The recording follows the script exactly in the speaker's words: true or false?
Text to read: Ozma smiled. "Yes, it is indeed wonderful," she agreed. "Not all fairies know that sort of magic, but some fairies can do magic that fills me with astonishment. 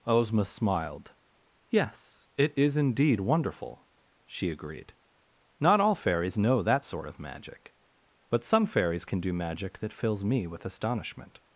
true